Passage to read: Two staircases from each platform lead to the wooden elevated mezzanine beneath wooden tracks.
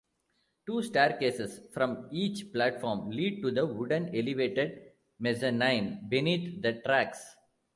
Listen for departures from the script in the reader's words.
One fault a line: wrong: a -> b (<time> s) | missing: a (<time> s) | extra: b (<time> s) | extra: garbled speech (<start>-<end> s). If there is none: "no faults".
wrong: wooden -> the (6.6 s)